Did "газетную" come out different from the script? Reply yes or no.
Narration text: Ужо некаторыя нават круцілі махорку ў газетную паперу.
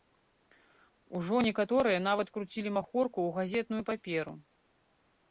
no